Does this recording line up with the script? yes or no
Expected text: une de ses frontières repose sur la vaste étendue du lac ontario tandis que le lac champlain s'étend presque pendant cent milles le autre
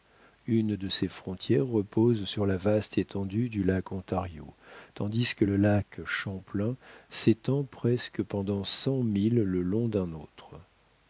no